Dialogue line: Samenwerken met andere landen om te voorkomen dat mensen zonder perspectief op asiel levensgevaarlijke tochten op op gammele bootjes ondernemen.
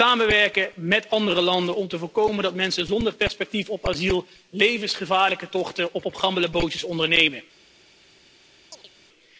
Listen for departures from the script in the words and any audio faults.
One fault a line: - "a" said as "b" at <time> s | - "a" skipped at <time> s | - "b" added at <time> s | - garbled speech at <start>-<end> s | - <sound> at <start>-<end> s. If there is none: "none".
- chirp at 8.7-8.9 s